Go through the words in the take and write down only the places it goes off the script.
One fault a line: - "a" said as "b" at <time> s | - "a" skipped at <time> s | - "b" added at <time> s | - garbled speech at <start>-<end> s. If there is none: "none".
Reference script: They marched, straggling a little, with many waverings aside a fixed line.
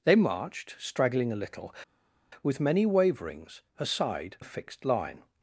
none